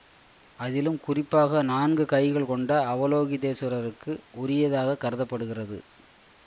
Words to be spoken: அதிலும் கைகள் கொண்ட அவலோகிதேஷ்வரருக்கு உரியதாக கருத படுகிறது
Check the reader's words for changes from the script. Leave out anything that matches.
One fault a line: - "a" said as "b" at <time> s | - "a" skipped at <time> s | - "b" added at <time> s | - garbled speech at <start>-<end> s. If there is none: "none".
- "குறிப்பாக நான்கு" added at 1.0 s